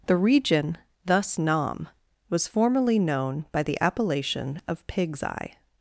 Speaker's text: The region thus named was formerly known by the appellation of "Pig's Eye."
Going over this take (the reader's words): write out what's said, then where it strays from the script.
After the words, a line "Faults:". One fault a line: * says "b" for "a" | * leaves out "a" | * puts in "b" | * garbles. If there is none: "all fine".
The region thus nam was formerly known by the appellation of "Pig's Eye."
Faults:
* says "nam" for "named"